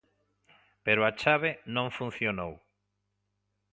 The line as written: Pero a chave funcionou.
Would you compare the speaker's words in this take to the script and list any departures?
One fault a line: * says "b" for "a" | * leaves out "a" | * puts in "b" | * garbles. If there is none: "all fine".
* puts in "non"